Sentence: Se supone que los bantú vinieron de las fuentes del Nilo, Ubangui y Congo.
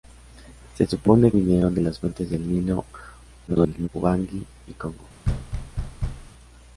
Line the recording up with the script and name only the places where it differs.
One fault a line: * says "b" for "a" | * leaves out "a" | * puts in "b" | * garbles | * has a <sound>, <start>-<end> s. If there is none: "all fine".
* leaves out "que los bantú"
* garbles
* has a thud, 5.2-6.3 s